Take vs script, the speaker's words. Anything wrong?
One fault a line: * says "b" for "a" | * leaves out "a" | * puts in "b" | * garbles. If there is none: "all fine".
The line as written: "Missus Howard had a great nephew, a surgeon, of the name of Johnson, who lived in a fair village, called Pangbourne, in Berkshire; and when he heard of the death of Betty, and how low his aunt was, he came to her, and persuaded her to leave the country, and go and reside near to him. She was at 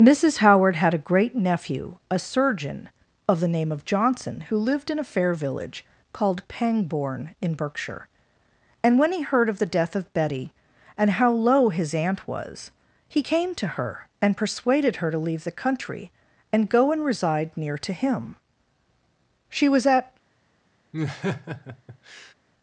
all fine